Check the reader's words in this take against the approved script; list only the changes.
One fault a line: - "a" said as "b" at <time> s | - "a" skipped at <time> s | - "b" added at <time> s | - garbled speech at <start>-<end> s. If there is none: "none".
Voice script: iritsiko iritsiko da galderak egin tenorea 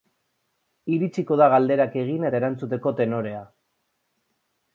- "iritsiko" skipped at 1.4 s
- "eta erantzuteko" added at 2.3 s